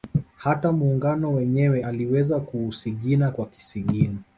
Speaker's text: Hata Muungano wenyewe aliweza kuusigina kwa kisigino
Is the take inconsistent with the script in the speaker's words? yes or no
no